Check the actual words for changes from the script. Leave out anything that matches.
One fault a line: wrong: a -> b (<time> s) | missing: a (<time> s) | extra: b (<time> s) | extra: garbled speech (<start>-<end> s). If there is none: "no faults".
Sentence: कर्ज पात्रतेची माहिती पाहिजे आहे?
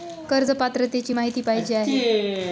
no faults